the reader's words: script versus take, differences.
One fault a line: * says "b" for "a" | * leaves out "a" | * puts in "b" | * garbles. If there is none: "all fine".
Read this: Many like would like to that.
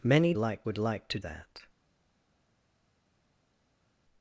all fine